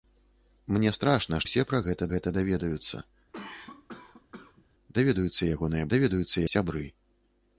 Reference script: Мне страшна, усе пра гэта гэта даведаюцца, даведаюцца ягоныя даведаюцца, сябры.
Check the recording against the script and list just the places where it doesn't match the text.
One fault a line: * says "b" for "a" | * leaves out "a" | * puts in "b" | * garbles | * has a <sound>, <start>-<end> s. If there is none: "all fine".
* has a cough, 3.3-4.7 s